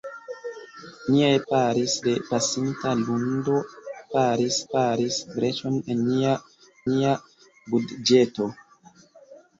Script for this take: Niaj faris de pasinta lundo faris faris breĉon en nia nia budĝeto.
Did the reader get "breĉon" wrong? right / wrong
right